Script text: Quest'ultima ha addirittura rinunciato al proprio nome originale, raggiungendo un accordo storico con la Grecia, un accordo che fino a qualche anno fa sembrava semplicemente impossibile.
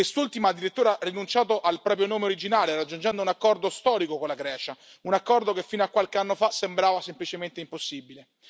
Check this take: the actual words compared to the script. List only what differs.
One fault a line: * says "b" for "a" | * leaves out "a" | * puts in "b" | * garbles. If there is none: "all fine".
all fine